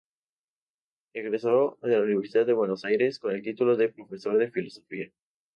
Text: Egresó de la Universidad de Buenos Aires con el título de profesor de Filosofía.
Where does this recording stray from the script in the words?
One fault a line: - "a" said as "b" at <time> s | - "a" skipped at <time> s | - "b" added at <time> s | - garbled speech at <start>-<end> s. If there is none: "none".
none